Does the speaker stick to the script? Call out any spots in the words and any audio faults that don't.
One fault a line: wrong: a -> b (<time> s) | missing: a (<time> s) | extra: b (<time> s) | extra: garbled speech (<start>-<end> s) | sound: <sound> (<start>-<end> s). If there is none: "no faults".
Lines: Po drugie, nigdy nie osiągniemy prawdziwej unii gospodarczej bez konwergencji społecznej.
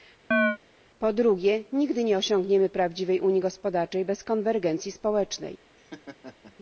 sound: chirp (0.3-0.6 s)
sound: laugh (5.8-6.6 s)